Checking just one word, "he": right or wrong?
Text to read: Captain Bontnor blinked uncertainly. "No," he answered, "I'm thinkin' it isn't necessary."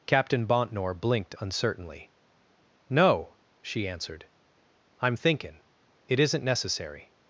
wrong